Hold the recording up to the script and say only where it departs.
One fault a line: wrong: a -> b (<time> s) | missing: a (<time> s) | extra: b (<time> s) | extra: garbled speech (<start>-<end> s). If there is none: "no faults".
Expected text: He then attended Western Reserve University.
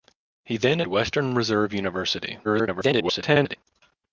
missing: attended (0.8 s)
extra: garbled speech (2.4-3.6 s)